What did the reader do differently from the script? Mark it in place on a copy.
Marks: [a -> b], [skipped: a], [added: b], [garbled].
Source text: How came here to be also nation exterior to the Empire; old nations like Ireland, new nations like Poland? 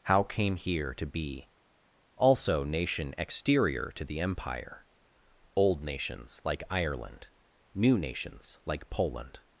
How came here to be also nation exterior to the Empire; old nations like Ireland, new nations like Poland?